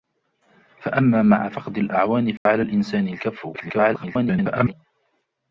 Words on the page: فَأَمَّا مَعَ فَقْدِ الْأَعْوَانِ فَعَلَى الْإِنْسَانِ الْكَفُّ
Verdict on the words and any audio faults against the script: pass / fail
fail